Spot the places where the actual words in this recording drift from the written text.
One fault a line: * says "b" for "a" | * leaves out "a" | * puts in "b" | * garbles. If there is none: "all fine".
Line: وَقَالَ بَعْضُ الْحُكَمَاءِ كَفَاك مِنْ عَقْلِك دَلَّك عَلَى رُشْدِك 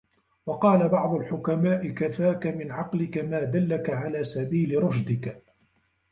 * puts in "مَا"
* puts in "سَبِيلِ"